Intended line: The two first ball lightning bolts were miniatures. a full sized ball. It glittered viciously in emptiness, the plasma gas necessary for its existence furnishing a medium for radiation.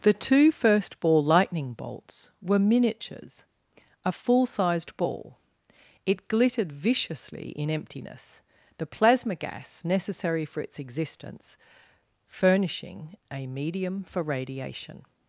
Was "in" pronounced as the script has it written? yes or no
yes